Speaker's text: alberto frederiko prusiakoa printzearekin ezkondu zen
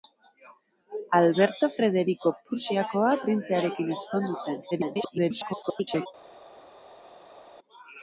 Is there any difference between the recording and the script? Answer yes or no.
yes